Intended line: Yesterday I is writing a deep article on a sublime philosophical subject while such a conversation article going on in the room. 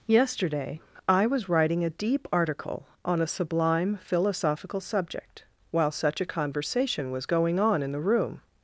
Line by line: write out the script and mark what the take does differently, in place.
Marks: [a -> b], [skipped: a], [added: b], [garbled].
Yesterday I [is -> was] writing a deep article on a sublime philosophical subject while such a conversation [article -> was] going on in the room.